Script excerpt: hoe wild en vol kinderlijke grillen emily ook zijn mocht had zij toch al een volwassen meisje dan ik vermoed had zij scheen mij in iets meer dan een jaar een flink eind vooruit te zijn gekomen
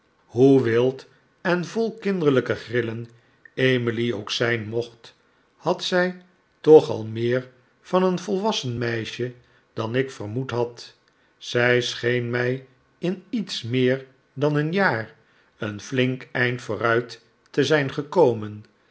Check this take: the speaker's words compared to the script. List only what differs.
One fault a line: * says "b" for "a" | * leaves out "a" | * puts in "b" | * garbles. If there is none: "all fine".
* puts in "meer van"